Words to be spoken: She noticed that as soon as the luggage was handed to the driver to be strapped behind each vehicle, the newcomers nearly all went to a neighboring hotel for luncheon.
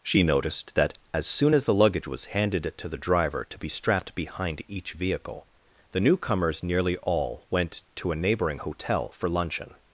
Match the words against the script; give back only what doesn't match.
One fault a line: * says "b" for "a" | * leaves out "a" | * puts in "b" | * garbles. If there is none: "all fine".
all fine